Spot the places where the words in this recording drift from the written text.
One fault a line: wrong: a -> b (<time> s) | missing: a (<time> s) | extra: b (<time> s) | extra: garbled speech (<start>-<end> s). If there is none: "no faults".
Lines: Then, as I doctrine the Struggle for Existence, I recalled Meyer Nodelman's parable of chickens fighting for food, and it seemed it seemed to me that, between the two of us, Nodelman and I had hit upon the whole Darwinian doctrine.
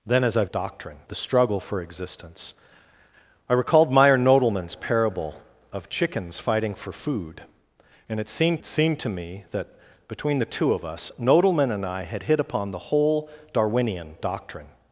no faults